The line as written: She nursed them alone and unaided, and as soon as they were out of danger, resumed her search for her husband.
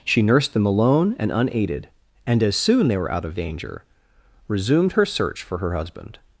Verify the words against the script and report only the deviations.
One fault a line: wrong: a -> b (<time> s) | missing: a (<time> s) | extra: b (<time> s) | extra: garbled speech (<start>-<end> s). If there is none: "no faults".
missing: as (2.9 s)